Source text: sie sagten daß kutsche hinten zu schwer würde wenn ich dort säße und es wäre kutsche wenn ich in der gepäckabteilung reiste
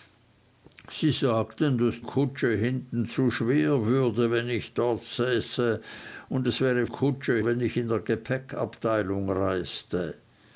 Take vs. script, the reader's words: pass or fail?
pass